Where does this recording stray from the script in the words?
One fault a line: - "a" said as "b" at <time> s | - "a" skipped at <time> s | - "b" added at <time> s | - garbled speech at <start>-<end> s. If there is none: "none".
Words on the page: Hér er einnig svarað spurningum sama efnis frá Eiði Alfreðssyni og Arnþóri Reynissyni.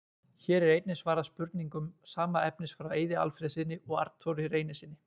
none